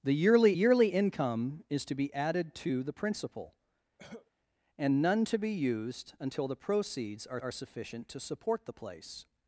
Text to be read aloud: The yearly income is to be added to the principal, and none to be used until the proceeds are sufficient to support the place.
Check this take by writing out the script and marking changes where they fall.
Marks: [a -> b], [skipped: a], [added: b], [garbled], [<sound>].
The yearly [added: yearly] income is to be added to the principal, [cough] and none to be used until the proceeds are [added: are] sufficient to support the place.